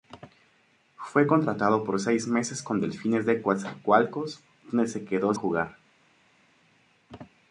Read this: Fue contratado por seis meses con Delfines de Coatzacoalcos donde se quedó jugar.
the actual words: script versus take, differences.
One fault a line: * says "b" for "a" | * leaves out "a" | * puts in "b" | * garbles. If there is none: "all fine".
all fine